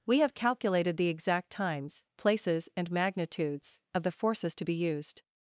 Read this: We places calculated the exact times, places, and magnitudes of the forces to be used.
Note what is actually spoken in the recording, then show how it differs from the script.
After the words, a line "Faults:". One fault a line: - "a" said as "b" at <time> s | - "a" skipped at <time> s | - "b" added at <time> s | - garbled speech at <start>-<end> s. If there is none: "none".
We have calculated the exact times, places, and magnitudes of the forces to be used.
Faults:
- "places" said as "have" at 0.2 s